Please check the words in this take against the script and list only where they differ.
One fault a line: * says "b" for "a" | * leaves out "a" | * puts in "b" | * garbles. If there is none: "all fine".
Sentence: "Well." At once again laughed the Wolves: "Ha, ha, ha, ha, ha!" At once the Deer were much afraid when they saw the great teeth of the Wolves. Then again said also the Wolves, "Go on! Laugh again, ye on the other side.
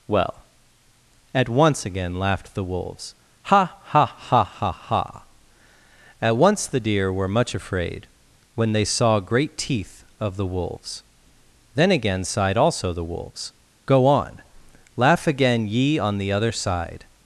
* leaves out "the"
* says "sighed" for "said"